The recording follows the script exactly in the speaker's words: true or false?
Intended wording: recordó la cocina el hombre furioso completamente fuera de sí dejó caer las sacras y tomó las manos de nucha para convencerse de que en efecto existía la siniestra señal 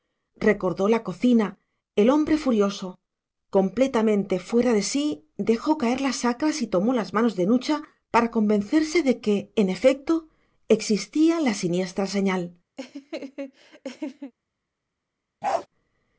true